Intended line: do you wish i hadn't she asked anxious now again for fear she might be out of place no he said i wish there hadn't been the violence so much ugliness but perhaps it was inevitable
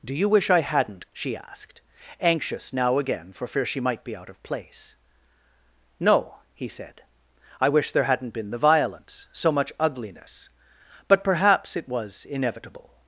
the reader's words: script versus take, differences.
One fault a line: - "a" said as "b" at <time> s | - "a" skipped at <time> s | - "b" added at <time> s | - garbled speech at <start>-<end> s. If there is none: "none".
none